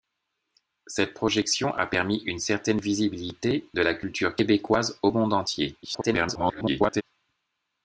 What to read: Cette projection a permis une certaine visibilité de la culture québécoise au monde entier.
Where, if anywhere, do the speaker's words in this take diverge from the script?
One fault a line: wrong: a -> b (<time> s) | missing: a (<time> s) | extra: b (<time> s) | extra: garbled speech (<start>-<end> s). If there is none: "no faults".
extra: garbled speech (5.8-7.0 s)